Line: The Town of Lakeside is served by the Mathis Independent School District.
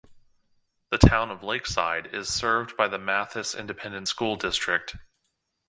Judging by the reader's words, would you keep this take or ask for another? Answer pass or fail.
pass